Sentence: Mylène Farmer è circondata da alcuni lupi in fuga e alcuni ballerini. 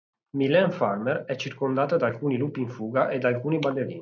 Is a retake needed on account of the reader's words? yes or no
yes